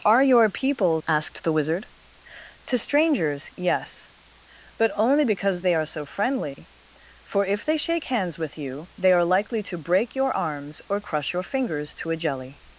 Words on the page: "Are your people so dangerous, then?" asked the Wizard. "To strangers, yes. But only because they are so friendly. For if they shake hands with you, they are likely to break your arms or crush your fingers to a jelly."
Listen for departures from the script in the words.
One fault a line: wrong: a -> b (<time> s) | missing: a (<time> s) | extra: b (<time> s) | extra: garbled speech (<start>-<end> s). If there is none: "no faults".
missing: so dangerous then (1.0 s)